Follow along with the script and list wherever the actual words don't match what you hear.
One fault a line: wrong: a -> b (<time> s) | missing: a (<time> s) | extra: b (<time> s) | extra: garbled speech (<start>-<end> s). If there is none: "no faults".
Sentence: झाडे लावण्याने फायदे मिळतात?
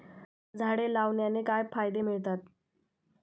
extra: काय (1.4 s)